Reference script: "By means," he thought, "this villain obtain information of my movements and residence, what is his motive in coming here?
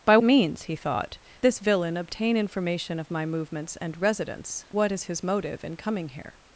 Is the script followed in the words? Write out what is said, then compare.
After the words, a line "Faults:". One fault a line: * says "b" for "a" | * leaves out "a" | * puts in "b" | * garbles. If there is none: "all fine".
"By means," he thought, "this villain obtain information of my movements and residence, what is his motive in coming here?
Faults:
all fine